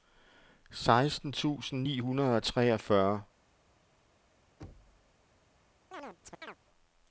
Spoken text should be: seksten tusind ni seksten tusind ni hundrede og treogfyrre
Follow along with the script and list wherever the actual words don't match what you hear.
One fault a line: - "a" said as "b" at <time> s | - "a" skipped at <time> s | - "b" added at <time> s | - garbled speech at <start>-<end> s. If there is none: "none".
- "seksten tusind ni" skipped at 2.0 s